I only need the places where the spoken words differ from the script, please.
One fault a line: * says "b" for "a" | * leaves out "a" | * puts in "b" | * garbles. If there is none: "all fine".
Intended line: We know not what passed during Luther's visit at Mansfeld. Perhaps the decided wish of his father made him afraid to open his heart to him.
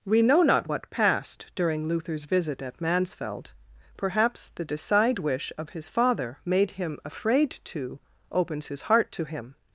* says "decide" for "decided"
* says "opens" for "open"